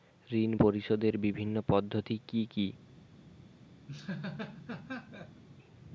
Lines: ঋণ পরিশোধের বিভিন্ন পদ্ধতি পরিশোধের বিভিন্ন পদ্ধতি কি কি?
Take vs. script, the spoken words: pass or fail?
fail